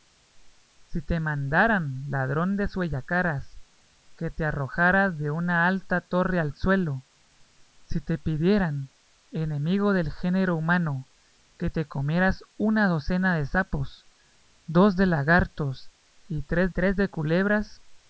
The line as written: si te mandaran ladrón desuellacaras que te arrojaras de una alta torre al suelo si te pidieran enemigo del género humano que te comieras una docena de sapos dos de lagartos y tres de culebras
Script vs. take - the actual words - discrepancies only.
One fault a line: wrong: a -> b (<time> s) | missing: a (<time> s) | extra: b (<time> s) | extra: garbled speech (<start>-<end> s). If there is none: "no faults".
extra: tres (16.7 s)